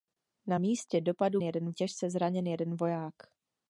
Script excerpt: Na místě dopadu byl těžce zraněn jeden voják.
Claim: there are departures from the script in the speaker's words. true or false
true